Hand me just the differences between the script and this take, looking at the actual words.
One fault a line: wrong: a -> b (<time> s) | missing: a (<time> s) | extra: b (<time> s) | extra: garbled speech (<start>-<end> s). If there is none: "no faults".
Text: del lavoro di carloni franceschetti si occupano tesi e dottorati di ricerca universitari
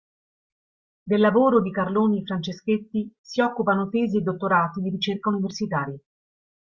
no faults